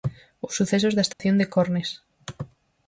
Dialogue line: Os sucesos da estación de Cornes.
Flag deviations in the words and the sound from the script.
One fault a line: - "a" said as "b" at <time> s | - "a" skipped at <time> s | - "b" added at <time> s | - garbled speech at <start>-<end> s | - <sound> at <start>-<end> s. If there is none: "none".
- dropout at 1.1-1.2 s